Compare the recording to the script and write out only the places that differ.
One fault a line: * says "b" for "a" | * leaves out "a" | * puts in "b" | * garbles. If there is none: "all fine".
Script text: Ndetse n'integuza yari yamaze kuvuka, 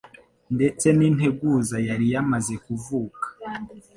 all fine